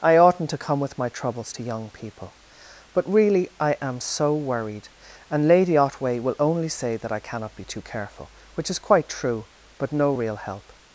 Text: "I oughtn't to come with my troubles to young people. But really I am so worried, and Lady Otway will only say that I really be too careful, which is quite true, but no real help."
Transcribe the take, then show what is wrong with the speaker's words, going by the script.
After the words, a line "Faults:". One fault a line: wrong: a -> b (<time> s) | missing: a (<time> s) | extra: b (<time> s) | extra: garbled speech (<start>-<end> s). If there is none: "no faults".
"I oughtn't to come with my troubles to young people. But really I am so worried, and Lady Otway will only say that I cannot be too careful, which is quite true, but no real help."
Faults:
wrong: really -> cannot (7.2 s)